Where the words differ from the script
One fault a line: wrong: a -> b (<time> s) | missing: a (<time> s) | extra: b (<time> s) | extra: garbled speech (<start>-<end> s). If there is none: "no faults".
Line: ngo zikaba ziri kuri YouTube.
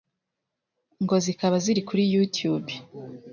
no faults